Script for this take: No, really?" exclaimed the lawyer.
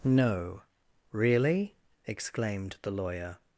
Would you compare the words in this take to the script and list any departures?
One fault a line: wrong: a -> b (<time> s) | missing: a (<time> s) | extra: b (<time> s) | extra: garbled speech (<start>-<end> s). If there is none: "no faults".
no faults